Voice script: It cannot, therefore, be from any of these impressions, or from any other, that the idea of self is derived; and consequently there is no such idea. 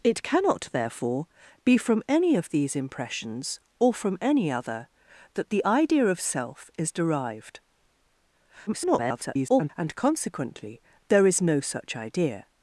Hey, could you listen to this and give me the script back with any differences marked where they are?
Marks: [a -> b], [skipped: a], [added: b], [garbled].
It cannot, therefore, be from any of these impressions, or from any other, that the idea of self is derived; [garbled] and consequently there is no such idea.